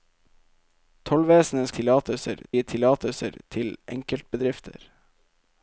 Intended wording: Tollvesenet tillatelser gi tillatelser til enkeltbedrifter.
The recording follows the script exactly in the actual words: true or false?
true